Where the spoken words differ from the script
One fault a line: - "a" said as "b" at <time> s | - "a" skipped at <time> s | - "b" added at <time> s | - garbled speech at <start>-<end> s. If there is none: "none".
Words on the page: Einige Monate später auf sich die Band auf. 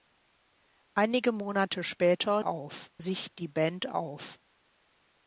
none